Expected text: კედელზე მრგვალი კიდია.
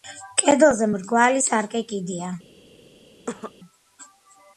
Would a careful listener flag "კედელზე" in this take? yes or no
no